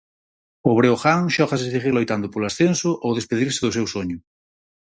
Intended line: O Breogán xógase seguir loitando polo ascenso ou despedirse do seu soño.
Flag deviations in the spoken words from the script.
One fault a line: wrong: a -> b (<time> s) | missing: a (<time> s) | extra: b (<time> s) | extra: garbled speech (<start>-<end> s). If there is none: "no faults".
no faults